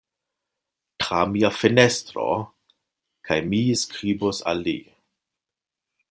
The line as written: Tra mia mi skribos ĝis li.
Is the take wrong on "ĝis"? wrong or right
wrong